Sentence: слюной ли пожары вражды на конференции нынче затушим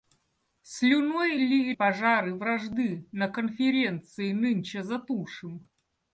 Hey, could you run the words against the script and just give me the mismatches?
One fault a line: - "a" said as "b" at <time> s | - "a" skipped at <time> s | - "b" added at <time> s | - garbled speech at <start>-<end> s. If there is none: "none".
none